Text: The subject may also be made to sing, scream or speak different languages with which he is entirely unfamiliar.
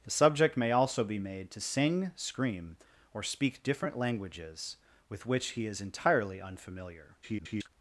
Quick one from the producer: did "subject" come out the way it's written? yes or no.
yes